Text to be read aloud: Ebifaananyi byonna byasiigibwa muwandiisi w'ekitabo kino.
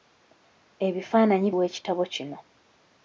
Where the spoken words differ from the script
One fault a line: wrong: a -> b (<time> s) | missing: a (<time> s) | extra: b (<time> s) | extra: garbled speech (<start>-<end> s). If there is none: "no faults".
missing: byonna byasiigibwa muwandiisi (1.5 s)